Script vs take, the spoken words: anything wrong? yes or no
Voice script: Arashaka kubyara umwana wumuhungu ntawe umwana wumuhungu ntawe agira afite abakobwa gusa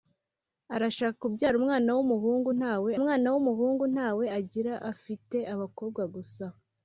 no